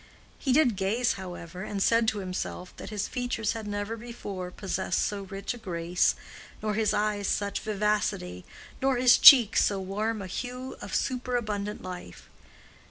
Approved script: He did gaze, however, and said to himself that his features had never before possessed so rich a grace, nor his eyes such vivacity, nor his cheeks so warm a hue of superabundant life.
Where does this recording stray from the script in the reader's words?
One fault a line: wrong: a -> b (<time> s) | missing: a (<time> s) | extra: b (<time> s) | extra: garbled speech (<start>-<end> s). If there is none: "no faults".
no faults